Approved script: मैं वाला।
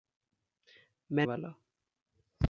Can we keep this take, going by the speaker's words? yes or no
yes